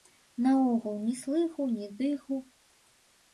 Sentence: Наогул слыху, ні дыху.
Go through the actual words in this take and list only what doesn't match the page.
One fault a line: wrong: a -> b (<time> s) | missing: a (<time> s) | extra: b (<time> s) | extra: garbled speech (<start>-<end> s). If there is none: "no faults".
extra: ні (1.0 s)